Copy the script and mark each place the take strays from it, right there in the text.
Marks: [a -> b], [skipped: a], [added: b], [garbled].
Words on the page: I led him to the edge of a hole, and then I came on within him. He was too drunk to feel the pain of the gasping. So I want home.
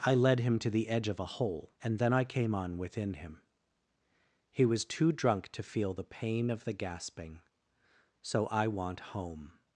I led him to the edge of a hole, and then I came on within him. He was too drunk to feel the pain of the gasping. So I want home.